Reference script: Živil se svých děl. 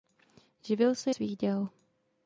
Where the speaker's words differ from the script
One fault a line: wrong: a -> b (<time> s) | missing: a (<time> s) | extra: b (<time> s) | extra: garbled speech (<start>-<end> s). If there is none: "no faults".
no faults